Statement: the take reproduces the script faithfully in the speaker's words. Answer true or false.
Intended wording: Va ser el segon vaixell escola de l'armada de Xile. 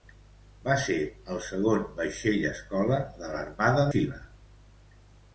false